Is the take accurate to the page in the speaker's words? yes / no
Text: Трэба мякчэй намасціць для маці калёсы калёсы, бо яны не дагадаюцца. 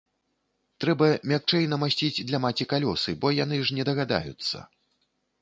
no